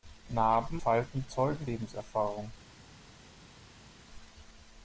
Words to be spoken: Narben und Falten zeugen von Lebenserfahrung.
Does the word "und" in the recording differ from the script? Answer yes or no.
yes